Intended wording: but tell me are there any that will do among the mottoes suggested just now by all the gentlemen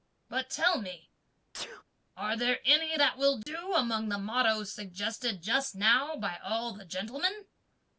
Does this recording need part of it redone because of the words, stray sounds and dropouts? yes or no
yes